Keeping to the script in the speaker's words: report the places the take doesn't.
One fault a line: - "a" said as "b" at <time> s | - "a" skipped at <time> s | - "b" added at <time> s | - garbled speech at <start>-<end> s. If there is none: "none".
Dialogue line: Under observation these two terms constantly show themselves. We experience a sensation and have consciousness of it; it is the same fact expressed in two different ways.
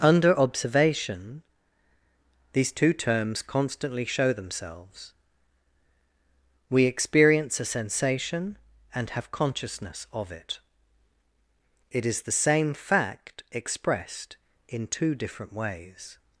none